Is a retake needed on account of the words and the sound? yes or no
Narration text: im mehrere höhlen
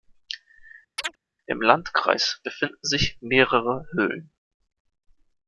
yes